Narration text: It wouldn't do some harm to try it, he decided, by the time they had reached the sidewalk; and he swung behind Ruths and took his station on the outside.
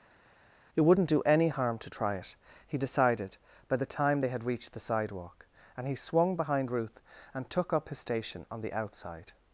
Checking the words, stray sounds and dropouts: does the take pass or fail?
fail